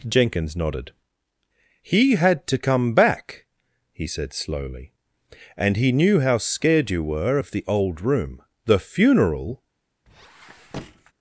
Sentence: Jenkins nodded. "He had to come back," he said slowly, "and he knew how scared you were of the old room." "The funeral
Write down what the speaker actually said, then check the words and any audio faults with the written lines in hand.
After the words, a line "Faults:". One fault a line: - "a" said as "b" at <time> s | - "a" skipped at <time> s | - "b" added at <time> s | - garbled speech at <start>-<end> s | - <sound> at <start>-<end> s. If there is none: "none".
Jenkins nodded. "He had to come back," he said slowly, "and he knew how scared you were of the old room." "The funeral
Faults:
- squeak at 10.1-11.1 s